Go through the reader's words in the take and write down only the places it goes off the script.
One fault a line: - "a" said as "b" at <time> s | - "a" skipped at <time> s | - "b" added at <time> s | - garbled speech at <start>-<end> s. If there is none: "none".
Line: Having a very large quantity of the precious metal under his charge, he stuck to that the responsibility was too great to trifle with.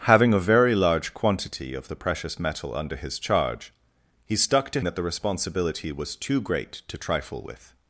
none